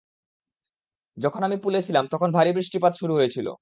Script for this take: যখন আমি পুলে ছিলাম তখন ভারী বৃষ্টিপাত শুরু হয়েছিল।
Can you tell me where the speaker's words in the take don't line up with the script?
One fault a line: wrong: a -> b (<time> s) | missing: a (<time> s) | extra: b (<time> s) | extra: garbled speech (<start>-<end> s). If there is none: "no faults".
no faults